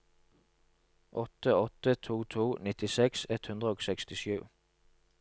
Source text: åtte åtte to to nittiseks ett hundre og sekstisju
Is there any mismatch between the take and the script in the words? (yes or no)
no